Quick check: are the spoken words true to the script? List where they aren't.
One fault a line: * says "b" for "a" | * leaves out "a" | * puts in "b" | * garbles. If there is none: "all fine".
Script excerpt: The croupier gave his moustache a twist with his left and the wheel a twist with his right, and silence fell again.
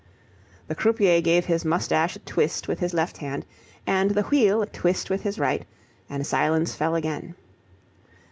* puts in "hand"